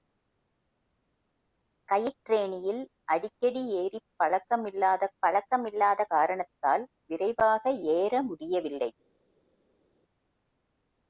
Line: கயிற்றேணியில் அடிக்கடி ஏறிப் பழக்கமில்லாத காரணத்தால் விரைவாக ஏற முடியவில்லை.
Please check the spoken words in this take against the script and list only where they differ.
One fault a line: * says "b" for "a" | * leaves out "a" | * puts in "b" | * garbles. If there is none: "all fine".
* puts in "பழக்கமில்லாத"